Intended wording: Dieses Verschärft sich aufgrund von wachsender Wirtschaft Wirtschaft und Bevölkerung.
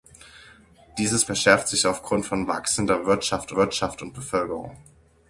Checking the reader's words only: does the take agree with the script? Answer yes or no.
yes